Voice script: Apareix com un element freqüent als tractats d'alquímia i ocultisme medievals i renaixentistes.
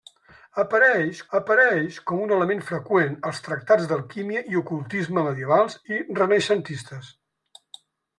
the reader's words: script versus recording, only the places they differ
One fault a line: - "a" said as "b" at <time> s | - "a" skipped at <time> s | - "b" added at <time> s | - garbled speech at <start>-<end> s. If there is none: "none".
- "apareix" added at 1.4 s